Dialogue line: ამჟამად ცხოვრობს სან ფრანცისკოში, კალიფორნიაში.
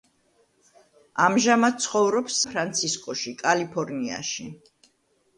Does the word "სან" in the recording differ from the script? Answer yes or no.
yes